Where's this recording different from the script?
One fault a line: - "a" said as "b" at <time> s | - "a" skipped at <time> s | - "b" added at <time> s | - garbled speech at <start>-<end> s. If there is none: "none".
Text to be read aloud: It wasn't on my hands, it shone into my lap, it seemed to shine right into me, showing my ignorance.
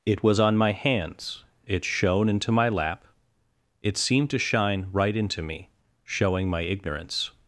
- "wasn't" said as "was" at 0.2 s